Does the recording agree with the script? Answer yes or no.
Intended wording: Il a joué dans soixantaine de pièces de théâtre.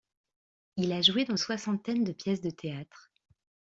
yes